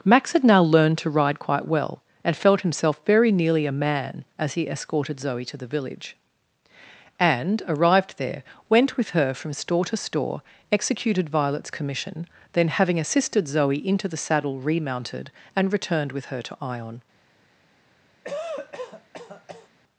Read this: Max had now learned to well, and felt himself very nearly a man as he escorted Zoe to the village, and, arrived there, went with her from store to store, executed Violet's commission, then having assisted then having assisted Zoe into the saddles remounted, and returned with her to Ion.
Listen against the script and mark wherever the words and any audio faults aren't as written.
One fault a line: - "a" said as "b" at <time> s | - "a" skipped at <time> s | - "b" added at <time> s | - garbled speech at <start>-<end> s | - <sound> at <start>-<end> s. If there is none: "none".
- "ride quite" added at 1.1 s
- "then having assisted" skipped at 13.5 s
- "saddles" said as "saddle" at 14.2 s
- cough at 18.2-19.7 s